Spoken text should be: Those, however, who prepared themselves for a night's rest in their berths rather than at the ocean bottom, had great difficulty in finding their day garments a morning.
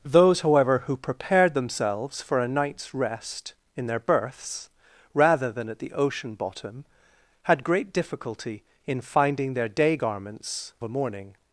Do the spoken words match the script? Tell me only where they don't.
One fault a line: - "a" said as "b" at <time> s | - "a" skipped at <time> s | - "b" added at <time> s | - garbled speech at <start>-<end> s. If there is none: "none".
none